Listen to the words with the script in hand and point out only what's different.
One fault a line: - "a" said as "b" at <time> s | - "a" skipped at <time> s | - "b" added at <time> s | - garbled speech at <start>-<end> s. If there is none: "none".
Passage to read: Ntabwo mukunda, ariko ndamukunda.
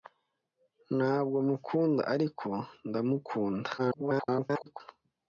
- garbled speech at 3.8-4.8 s